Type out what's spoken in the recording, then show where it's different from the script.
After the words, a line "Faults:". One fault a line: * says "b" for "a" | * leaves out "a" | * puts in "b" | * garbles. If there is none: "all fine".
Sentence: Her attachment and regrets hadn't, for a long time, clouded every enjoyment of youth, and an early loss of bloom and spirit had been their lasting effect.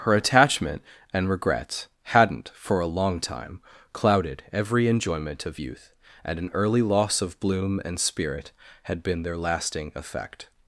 Her attachment and regrets hadn't, for a long time, clouded every enjoyment of youth, and an early loss of bloom and spirit had been their lasting effect.
Faults:
all fine